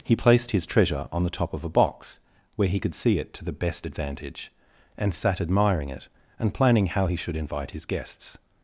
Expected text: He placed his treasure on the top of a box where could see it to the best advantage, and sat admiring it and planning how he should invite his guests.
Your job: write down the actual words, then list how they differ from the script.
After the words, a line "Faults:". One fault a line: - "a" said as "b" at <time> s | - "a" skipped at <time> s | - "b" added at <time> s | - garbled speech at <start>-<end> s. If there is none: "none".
He placed his treasure on the top of a box where he could see it to the best advantage, and sat admiring it and planning how he should invite his guests.
Faults:
- "he" added at 2.7 s